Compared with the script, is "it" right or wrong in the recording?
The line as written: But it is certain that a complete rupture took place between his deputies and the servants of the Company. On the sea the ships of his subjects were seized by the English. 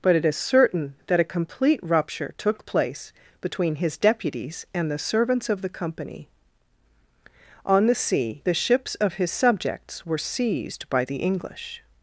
right